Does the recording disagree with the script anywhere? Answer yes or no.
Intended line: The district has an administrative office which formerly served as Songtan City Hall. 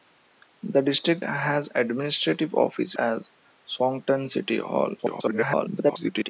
yes